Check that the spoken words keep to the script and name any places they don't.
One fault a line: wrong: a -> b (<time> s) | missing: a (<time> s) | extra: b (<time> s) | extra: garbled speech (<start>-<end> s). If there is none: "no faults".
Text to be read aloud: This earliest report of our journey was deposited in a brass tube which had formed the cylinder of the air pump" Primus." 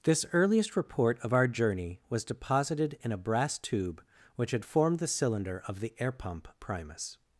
no faults